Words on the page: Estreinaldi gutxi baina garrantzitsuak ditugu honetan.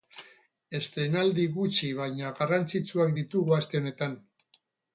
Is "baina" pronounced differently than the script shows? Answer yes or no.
no